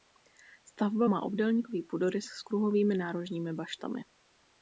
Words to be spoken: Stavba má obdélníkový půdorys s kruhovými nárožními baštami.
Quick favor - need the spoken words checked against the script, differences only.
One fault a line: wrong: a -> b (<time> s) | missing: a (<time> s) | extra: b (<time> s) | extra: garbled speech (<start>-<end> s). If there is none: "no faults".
no faults